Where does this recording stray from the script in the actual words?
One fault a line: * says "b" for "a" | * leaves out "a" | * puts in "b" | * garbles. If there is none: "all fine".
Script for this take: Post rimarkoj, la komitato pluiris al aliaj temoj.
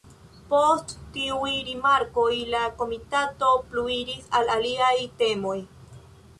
* puts in "tiuj"